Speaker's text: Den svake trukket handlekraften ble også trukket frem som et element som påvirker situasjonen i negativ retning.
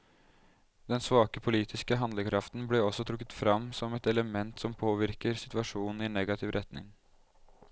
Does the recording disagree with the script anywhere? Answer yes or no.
yes